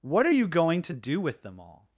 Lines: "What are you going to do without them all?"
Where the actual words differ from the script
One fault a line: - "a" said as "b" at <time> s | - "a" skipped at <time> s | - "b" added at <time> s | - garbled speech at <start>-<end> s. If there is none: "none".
- "without" said as "with" at 1.2 s